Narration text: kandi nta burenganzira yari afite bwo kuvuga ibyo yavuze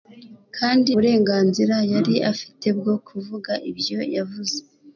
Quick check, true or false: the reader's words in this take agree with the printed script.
false